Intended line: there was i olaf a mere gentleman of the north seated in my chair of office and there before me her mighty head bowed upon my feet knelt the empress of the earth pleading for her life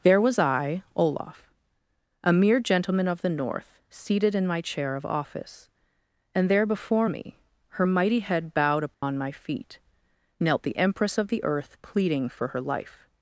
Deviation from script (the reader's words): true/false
false